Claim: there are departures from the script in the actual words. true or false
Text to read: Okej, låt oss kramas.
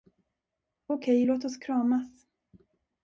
false